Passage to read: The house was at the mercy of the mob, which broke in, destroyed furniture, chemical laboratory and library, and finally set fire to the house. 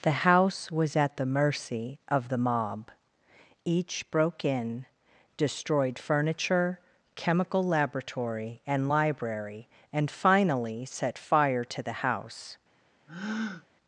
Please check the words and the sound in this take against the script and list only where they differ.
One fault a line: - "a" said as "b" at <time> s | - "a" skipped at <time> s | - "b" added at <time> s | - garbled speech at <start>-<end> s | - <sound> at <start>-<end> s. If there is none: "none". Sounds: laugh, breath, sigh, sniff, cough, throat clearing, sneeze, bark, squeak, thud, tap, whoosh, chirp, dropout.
- "which" said as "each" at 3.7 s
- breath at 13.1-13.7 s